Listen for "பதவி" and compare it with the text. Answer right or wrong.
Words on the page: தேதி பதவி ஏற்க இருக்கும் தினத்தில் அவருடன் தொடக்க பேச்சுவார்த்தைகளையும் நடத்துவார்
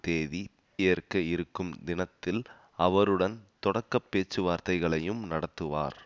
wrong